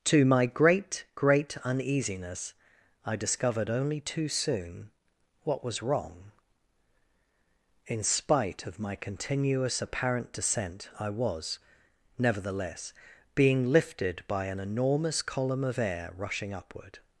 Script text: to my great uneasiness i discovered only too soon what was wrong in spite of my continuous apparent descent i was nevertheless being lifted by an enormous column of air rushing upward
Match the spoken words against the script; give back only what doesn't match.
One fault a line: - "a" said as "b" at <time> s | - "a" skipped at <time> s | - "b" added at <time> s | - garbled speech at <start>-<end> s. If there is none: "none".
- "great" added at 1.1 s